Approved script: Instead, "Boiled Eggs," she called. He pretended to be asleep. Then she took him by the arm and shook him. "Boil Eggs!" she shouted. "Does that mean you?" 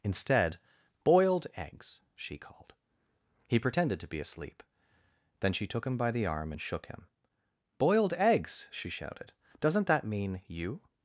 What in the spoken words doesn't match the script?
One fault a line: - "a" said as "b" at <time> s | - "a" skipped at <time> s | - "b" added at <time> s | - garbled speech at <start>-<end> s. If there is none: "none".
- "Boil" said as "Boiled" at 7.8 s
- "Does" said as "Doesn't" at 9.6 s